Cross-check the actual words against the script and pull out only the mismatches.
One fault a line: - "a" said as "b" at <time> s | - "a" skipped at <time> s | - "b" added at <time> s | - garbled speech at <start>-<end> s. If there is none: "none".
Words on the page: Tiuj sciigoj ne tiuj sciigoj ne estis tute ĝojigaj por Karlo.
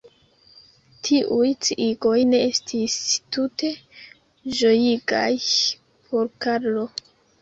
- "tiuj sciigoj ne" skipped at 2.4 s